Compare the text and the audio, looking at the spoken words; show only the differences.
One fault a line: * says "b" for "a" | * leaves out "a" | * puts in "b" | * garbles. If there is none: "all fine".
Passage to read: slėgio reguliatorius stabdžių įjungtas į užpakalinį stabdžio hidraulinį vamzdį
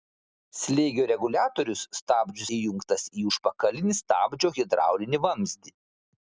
all fine